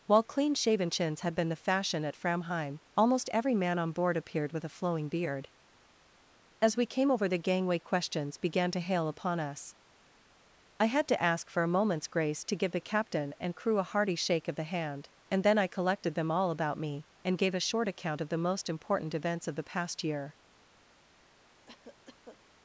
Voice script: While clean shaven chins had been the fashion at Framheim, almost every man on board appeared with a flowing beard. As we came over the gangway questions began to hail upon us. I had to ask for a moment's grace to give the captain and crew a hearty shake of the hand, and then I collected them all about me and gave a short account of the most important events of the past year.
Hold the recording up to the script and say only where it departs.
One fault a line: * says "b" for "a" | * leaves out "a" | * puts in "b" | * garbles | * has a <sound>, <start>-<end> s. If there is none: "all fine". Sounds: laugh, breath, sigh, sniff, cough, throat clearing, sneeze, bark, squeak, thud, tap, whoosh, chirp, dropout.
* has a cough, 21.7-22.4 s